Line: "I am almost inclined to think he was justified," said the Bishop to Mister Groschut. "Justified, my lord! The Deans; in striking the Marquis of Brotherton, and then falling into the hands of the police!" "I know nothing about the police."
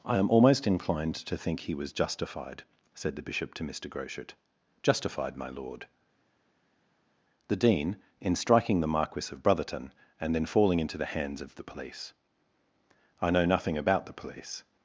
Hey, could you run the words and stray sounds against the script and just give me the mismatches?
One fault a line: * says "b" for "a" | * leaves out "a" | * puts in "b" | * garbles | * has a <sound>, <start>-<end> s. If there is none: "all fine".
* says "Dean" for "Deans"